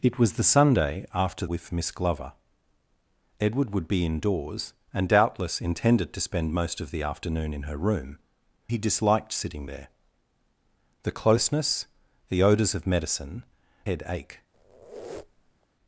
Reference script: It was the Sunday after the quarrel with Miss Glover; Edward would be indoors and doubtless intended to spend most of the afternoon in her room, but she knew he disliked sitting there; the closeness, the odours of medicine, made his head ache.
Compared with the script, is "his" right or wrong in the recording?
wrong